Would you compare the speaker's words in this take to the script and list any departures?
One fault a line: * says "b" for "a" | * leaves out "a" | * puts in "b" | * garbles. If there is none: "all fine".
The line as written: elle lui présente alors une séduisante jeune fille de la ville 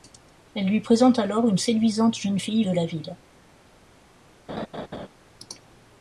all fine